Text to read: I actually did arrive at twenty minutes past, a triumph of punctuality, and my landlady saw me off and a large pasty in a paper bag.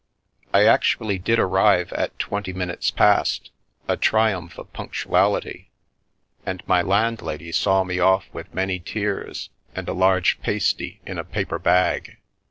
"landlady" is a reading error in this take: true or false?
false